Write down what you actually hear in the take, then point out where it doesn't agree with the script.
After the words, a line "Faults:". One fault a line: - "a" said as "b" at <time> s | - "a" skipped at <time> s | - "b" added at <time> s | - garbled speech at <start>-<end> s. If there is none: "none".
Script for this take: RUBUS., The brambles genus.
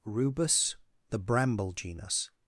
RUBUS., The bramble genus.
Faults:
- "brambles" said as "bramble" at 1.2 s